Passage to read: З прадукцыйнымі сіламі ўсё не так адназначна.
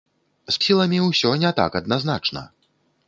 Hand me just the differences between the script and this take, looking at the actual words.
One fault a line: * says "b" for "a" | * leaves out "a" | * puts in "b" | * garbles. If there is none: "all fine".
* leaves out "прадукцыйнымі"